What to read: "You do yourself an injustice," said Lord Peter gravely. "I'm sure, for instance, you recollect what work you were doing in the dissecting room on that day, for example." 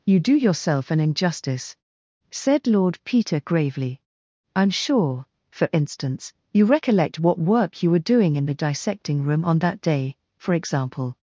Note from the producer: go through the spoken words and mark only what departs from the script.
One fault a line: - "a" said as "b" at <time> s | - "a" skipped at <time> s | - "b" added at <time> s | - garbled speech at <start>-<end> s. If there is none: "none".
none